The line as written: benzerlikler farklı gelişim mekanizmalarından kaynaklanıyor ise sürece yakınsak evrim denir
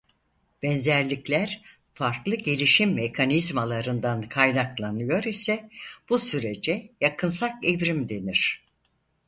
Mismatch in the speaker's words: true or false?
true